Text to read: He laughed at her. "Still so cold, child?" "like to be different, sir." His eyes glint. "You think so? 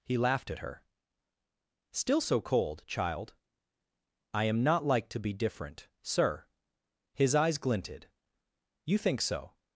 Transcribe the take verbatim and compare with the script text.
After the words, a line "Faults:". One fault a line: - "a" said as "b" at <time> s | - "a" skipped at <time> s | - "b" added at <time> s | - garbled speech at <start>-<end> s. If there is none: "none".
He laughed at her. "Still so cold, child?" "I am not like to be different, sir." His eyes glinted. "You think so?
Faults:
- "I am not" added at 4.3 s
- "glint" said as "glinted" at 7.6 s